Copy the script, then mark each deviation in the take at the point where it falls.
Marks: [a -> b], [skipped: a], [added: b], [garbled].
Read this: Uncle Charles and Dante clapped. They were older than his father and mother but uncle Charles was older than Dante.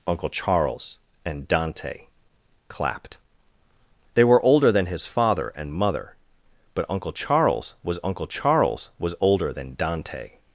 Uncle Charles and Dante clapped. They were older than his father and mother but uncle Charles was [added: uncle Charles was] older than Dante.